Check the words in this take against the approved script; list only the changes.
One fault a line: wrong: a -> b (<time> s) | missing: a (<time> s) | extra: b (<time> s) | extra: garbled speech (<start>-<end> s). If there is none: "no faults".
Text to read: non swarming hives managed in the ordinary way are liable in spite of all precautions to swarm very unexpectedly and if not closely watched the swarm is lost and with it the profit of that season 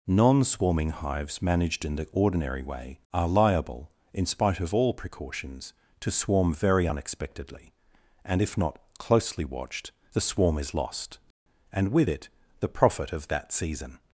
no faults